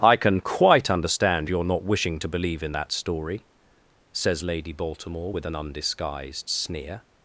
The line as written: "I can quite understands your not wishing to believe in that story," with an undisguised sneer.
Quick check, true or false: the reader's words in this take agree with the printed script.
false